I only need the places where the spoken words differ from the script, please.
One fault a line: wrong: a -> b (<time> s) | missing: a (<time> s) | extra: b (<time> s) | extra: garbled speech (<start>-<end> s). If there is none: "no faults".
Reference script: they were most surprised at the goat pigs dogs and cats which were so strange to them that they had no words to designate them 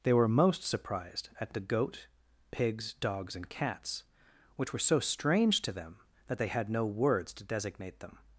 no faults